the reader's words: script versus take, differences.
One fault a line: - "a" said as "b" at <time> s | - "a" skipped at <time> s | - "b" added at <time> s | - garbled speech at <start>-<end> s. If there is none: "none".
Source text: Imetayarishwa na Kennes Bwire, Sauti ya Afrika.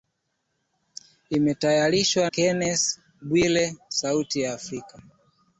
- "na" skipped at 2.2 s